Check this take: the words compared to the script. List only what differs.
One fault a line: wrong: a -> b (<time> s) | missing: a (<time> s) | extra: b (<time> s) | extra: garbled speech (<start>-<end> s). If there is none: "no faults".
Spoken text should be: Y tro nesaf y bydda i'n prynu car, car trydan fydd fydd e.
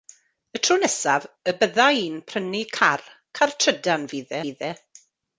no faults